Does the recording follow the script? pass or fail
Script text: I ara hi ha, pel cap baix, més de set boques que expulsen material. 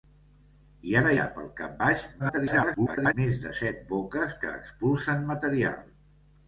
fail